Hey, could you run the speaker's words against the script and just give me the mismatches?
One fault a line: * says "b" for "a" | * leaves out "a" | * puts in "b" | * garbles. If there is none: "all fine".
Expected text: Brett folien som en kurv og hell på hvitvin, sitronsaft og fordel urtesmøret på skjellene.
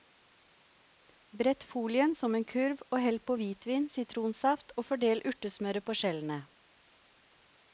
all fine